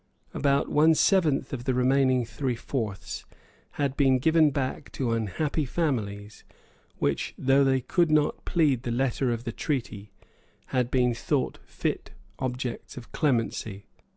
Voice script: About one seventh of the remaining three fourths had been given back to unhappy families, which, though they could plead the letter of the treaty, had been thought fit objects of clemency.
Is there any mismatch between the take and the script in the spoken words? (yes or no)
yes